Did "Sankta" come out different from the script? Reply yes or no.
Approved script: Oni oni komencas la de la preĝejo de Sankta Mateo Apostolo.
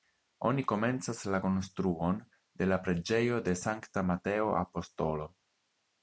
no